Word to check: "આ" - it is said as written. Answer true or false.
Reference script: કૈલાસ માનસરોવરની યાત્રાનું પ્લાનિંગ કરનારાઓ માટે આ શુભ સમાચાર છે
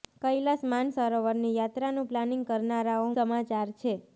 false